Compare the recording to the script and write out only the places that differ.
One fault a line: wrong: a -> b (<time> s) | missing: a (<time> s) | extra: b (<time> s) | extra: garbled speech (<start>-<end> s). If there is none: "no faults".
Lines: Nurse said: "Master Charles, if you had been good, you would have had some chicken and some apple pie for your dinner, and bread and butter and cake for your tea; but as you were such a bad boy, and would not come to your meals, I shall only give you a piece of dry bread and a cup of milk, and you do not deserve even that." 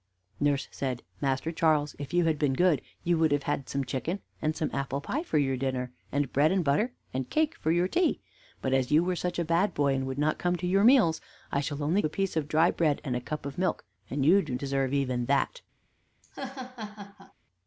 missing: give you (12.0 s)
missing: not (14.5 s)